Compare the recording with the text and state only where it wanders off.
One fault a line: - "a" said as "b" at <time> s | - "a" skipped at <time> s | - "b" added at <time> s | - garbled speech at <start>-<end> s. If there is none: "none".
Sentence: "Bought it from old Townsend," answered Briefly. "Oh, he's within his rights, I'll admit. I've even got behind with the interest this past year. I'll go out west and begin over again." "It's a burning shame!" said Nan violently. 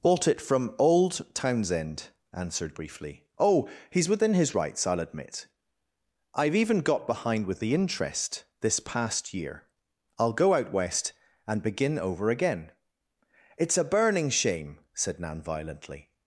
none